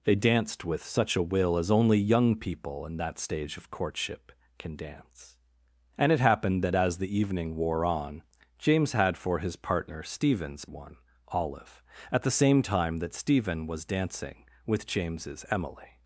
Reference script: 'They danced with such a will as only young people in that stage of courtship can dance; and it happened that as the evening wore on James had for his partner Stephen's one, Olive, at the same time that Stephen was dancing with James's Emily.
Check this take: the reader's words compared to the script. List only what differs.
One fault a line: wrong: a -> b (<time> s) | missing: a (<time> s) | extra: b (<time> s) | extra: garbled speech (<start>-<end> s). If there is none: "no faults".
no faults